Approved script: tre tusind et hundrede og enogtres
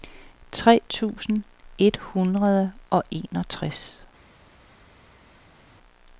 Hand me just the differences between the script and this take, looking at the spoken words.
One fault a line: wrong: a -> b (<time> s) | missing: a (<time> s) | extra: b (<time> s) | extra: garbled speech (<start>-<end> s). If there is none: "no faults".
no faults